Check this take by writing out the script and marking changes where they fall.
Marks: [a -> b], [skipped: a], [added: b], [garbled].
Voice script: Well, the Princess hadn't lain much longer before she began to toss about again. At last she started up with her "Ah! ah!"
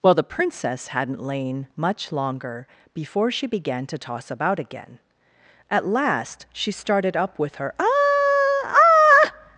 Well, the Princess hadn't lain much longer before she began to toss about again. At last she started up with her "Ah! ah!"